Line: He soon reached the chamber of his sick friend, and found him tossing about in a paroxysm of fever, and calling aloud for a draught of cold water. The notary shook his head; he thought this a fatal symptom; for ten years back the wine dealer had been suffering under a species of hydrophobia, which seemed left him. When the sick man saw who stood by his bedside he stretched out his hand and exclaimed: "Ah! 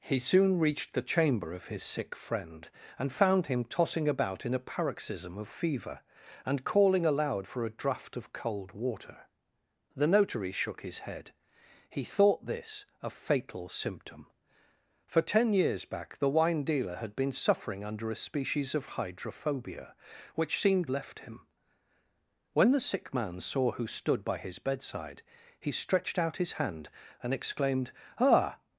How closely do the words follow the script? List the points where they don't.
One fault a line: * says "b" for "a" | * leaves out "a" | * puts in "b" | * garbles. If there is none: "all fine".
all fine